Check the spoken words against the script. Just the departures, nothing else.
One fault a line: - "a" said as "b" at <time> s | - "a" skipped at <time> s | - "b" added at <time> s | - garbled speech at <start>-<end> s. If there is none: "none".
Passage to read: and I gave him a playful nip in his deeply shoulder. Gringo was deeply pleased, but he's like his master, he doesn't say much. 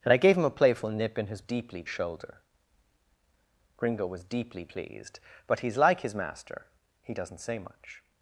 none